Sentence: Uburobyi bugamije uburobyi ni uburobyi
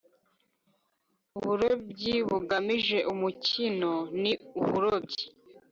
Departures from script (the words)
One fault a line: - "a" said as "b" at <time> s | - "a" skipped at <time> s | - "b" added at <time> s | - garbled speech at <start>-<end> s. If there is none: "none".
- "uburobyi" said as "umukino" at 3.1 s